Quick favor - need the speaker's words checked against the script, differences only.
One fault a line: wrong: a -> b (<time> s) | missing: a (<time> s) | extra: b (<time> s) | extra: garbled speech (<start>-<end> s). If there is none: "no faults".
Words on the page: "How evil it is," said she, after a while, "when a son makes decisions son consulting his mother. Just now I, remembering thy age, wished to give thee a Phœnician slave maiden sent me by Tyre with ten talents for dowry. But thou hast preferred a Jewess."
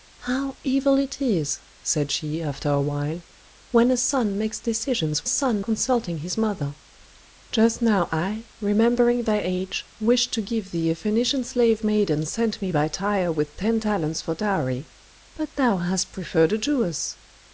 no faults